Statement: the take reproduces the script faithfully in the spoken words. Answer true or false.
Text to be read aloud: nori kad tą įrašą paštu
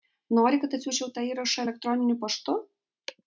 false